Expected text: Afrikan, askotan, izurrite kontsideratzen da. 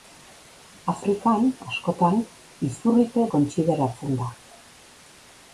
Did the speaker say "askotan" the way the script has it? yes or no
yes